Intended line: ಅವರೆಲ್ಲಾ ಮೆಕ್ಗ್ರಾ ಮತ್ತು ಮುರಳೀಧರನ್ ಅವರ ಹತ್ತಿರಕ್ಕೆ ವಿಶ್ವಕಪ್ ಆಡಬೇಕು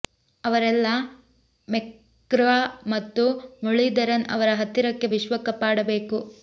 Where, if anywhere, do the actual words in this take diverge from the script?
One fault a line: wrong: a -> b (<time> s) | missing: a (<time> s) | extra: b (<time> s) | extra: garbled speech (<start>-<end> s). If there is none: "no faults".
no faults